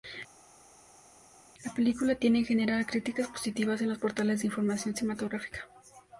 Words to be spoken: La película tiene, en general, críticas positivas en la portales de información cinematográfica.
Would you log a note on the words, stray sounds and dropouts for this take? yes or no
yes